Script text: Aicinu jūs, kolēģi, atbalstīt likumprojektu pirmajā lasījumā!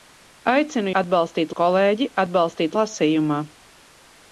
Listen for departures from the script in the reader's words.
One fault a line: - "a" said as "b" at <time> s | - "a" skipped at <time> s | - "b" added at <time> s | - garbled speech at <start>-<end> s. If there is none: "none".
- "jūs" said as "atbalstīt" at 1.0 s
- "likumprojektu pirmajā" skipped at 2.8 s